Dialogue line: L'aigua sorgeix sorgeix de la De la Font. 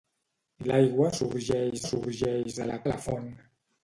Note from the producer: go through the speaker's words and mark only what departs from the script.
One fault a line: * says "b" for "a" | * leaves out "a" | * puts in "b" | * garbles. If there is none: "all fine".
all fine